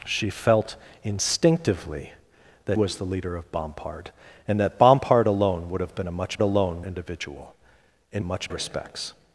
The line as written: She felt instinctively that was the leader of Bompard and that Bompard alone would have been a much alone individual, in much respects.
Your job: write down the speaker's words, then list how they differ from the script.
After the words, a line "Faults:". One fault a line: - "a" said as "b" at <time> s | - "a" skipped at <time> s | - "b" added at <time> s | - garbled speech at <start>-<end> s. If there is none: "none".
She felt instinctively that was the leader of Bompard and that Bompard alone would have been a much alone individual, in much respects.
Faults:
none